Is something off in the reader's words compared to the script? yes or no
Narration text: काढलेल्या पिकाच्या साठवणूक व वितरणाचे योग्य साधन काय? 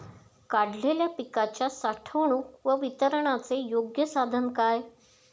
no